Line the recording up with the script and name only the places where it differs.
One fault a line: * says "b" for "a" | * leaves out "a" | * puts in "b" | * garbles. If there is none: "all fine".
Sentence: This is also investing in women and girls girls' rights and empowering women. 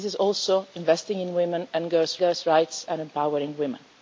all fine